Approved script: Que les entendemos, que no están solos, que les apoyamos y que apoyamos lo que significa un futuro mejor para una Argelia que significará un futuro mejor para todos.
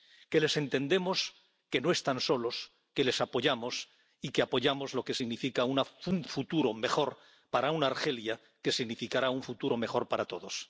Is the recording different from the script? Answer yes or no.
no